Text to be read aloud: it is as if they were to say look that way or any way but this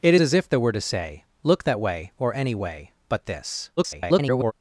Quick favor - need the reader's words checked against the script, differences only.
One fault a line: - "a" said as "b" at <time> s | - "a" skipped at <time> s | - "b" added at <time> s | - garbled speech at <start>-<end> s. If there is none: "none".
- "is" skipped at 0.1 s
- garbled speech at 3.8-4.5 s